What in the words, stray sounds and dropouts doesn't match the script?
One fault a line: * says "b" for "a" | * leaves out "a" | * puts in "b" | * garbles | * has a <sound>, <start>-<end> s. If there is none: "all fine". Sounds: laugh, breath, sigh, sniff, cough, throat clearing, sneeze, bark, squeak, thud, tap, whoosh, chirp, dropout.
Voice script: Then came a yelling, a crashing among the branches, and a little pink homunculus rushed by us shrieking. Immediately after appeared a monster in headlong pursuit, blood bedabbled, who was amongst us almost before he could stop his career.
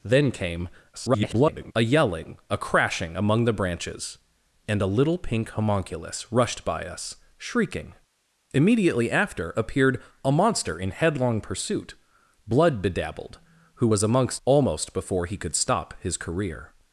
* garbles
* leaves out "us"